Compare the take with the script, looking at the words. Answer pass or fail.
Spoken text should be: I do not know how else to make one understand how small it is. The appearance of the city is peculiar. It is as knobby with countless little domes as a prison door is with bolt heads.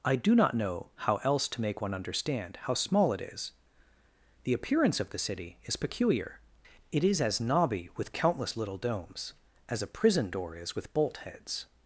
pass